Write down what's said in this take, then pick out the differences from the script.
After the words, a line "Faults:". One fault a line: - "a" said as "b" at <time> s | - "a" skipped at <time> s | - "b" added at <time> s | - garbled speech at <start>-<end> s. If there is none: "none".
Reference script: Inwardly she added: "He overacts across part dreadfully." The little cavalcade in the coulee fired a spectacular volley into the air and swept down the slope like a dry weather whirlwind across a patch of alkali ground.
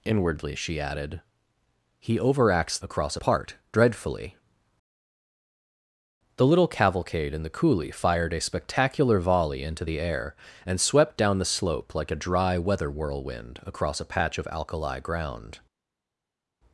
Inwardly she added: "He overacts across part dreadfully." The little cavalcade in the coulee fired a spectacular volley into the air and swept down the slope like a dry weather whirlwind across a patch of alkali ground.
Faults:
none